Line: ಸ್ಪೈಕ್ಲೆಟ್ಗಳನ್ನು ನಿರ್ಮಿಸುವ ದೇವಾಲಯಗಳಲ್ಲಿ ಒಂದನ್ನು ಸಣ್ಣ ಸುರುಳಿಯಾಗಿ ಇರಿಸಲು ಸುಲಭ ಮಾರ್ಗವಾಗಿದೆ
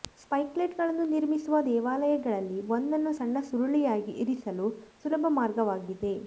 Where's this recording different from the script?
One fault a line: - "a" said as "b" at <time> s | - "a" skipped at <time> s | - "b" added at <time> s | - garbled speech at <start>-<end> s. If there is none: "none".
none